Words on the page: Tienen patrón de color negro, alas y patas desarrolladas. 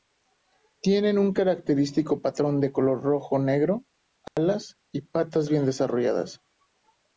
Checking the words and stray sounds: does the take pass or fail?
fail